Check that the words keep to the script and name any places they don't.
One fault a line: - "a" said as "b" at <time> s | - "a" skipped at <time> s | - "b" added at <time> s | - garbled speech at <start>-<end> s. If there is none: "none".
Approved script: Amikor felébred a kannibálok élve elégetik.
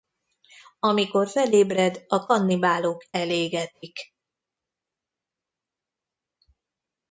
- "élve" skipped at 3.0 s